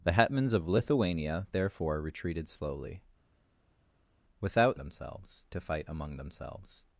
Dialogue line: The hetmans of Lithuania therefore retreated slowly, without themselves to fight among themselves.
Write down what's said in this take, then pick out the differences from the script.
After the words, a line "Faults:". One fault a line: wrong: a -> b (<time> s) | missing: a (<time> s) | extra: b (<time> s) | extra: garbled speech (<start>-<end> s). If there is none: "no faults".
The hetmans of Lithuania therefore retreated slowly, without themselves to fight among themselves.
Faults:
no faults